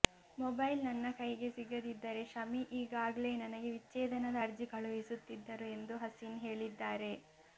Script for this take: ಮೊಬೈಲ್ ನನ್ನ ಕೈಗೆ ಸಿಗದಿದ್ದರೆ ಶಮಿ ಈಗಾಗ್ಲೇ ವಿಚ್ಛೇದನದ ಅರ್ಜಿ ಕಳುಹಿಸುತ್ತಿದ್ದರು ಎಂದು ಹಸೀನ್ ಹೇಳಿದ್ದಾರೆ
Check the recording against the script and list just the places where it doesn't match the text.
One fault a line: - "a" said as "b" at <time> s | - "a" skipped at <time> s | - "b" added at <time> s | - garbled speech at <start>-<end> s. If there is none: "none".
- "ನನಗೆ" added at 3.4 s